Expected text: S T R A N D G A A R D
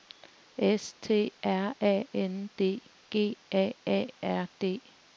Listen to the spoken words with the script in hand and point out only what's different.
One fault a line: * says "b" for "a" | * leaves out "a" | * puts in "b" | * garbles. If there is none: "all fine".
all fine